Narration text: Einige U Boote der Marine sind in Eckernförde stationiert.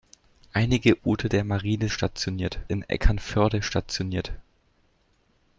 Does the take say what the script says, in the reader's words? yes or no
no